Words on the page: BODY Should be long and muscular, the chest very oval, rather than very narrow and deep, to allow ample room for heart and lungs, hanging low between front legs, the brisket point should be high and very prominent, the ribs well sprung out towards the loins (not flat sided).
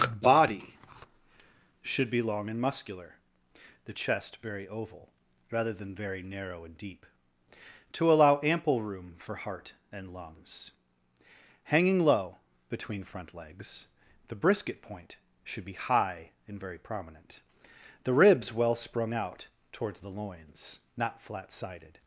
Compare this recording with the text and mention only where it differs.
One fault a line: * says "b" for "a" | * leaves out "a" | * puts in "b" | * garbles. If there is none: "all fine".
all fine